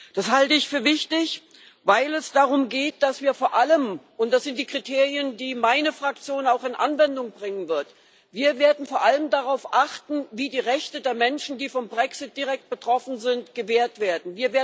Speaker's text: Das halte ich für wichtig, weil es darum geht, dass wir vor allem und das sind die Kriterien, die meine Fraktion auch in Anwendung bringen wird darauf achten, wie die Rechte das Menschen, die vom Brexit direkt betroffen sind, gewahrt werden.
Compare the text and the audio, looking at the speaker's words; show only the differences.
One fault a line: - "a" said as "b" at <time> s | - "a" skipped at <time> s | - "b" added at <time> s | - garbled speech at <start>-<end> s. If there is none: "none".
- "das" said as "der" at 11.0 s